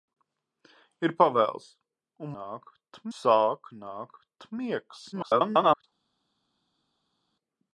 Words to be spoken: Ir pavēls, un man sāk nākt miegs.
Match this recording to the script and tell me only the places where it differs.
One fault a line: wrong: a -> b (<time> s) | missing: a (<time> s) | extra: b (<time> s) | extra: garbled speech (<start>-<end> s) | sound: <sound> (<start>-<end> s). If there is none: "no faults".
wrong: man -> nākt (2.4 s)
extra: garbled speech (5.1-5.8 s)